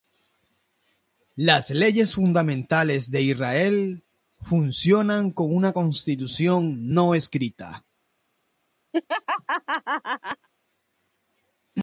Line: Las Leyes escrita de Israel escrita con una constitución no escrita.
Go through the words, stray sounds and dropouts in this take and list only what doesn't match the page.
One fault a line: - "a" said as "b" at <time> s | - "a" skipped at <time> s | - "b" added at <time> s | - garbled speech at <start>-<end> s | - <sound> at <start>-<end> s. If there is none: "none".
- "escrita" said as "fundamentales" at 2.1 s
- "escrita" said as "funcionan" at 4.4 s
- laugh at 8.9-10.5 s